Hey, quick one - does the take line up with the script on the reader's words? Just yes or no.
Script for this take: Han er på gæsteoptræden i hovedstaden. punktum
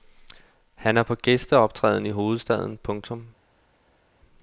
yes